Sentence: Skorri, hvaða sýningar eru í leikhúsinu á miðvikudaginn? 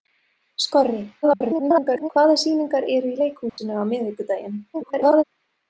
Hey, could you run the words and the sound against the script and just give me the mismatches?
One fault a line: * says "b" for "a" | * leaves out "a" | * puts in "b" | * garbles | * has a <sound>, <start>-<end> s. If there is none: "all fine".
* garbles
* has a dropout, 3.5-3.6 s
* garbles